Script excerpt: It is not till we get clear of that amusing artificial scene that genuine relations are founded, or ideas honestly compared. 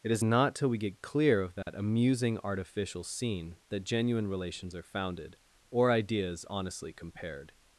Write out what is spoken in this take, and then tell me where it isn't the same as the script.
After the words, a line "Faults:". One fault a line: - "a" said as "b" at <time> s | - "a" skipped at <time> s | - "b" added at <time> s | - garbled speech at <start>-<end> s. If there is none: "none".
It is not till we get clear of that amusing artificial scene that genuine relations are founded, or ideas honestly compared.
Faults:
none